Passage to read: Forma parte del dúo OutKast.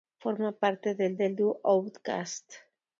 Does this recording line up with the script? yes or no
no